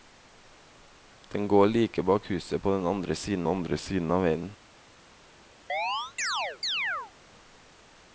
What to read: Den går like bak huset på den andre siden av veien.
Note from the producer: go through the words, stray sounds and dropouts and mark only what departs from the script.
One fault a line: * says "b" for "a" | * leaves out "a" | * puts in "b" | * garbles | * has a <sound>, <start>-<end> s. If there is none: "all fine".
* puts in "andre siden"
* has a chirp, 5.7-7.1 s